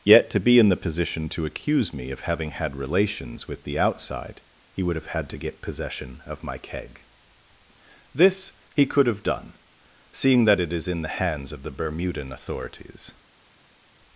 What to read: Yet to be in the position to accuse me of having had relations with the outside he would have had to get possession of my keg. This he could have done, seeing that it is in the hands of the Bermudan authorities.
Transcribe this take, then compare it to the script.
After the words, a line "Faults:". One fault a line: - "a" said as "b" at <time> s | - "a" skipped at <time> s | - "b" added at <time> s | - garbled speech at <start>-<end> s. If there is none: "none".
Yet to be in the position to accuse me of having had relations with the outside he would have had to get possession of my keg. This he could have done, seeing that it is in the hands of the Bermudan authorities.
Faults:
none